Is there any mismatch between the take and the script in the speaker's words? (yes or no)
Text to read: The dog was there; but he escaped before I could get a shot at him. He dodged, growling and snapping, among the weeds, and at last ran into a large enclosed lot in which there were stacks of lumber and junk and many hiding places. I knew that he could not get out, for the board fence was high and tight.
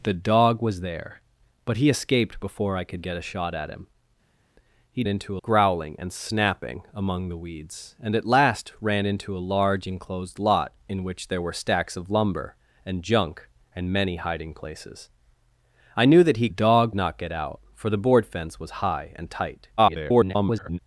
yes